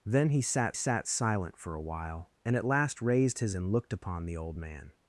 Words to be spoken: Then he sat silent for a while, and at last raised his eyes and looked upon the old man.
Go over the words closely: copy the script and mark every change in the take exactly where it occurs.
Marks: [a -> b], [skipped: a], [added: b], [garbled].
Then he sat [added: sat] silent for a while, and at last raised his [skipped: eyes] and looked upon the old man.